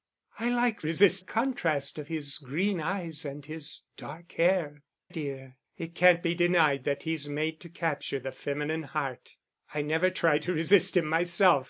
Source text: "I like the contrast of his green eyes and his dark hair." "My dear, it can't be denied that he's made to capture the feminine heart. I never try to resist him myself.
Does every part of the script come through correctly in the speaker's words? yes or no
no